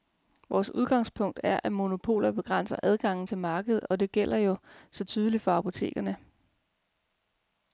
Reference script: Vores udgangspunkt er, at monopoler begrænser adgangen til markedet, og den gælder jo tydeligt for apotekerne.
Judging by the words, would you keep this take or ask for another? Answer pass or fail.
fail